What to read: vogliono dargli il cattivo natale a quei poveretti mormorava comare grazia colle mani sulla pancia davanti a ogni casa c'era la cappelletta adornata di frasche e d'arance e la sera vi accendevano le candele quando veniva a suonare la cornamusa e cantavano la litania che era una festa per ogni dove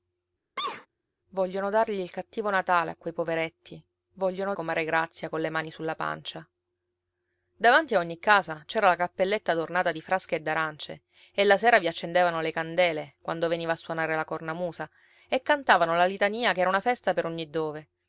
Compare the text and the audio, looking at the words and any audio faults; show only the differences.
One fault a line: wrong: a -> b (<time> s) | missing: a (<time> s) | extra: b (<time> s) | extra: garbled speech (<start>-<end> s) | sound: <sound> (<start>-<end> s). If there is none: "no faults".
sound: sneeze (0.6-0.9 s)
wrong: mormorava -> vogliono (4.1 s)